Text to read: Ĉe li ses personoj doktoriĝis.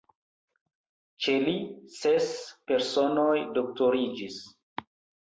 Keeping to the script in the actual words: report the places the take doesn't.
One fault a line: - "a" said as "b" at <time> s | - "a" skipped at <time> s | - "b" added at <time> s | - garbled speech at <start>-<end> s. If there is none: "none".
none